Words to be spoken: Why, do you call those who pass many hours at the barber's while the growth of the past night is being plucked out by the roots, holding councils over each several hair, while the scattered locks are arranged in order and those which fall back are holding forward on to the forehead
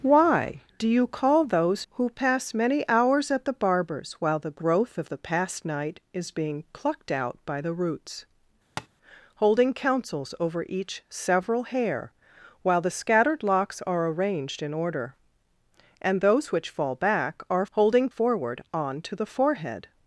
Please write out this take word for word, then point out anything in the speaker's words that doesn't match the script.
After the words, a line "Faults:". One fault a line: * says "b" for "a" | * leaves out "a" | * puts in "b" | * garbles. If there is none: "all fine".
Why, do you call those who pass many hours at the barber's while the growth of the past night is being plucked out by the roots, holding councils over each several hair, while the scattered locks are arranged in order and those which fall back are holding forward on to the forehead
Faults:
all fine